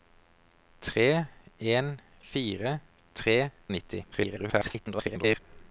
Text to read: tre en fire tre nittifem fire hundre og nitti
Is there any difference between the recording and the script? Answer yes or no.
yes